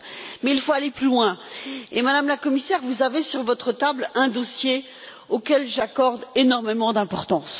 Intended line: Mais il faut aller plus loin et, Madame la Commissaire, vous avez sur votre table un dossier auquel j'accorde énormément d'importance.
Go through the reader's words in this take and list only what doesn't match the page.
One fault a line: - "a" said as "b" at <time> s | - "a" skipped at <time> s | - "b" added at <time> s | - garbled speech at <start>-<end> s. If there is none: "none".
none